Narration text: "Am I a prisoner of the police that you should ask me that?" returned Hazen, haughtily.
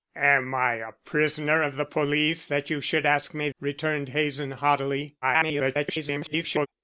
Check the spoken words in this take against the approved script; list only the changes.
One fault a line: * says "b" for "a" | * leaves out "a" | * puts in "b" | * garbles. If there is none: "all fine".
* leaves out "that"
* garbles